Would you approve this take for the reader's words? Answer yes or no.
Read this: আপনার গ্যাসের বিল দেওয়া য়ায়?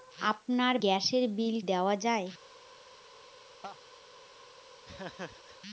yes